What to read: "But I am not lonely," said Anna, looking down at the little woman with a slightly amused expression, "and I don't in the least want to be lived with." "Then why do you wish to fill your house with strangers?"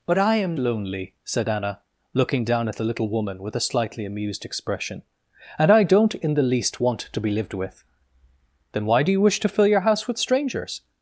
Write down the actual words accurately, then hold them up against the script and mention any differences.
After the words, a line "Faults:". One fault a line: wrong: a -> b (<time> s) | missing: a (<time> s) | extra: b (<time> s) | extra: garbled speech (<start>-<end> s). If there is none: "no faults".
"But I am lonely," said Anna, looking down at the little woman with a slightly amused expression, "and I don't in the least want to be lived with." "Then why do you wish to fill your house with strangers?"
Faults:
missing: not (0.6 s)